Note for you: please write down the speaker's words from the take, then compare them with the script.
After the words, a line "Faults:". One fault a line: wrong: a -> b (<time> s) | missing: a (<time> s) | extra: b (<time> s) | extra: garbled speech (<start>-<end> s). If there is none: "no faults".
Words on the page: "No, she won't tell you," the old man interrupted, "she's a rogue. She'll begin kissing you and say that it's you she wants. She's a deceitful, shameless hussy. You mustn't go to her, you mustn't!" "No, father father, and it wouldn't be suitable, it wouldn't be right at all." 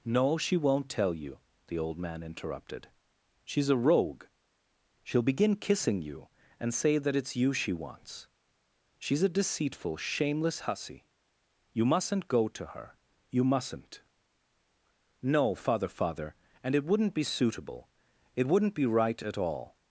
"No, she won't tell you," the old man interrupted, "she's a rogue. She'll begin kissing you and say that it's you she wants. She's a deceitful, shameless hussy. You mustn't go to her, you mustn't!" "No, father father, and it wouldn't be suitable, it wouldn't be right at all."
Faults:
no faults